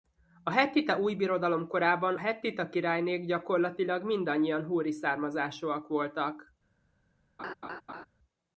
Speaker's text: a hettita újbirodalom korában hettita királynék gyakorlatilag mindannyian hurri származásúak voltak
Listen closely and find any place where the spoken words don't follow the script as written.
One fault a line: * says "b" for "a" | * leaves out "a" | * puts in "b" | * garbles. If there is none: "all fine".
all fine